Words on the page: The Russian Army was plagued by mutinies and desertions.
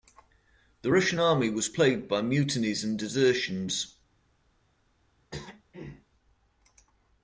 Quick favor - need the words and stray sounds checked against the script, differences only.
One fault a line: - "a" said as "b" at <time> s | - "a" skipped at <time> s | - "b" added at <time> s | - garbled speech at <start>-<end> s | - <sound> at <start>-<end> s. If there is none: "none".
- throat clearing at 5.3-6.1 s